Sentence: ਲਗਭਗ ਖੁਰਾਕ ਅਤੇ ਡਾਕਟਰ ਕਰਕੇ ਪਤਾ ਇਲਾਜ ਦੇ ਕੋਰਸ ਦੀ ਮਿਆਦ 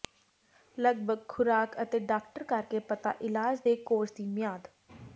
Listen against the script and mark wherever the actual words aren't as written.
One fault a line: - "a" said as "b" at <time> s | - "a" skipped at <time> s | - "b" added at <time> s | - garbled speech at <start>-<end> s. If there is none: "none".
none